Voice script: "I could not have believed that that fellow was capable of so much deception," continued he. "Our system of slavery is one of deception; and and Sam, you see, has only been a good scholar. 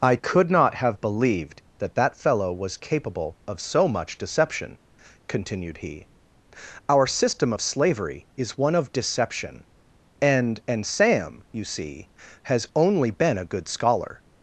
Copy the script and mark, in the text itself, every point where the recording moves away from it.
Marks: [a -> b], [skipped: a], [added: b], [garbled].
"I could not have believed that that fellow was capable of so much deception," continued he. "Our system of slavery is one of deception; and and Sam, you see, has only been a good scholar.